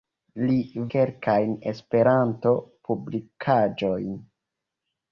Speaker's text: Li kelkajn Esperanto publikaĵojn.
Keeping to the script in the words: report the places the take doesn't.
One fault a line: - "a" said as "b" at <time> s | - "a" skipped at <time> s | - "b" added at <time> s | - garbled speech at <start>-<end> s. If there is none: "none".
none